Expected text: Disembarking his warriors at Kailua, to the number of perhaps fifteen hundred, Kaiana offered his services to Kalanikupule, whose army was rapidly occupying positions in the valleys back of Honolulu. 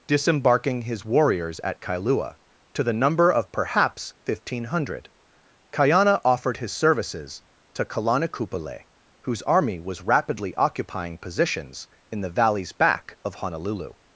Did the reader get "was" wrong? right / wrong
right